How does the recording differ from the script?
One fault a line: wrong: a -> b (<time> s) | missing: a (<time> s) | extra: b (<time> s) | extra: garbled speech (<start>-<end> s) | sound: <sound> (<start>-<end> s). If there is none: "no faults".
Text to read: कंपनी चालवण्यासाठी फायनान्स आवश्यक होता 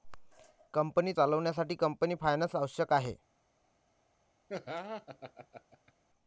extra: कंपनी (1.8 s)
wrong: होता -> आहे (2.9 s)
sound: laugh (4.5-5.9 s)